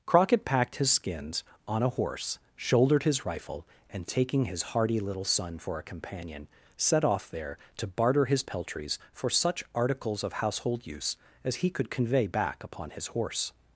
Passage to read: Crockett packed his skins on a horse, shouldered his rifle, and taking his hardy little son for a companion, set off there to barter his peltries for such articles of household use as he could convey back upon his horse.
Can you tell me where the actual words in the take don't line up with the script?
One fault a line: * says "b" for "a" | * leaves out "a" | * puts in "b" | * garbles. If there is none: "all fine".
all fine